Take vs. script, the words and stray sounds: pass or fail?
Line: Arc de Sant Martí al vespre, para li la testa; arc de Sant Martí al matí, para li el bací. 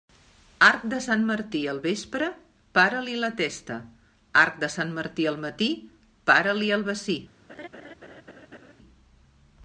fail